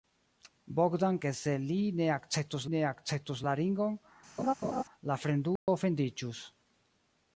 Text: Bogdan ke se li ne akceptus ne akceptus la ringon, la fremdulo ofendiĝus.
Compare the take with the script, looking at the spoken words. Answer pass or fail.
pass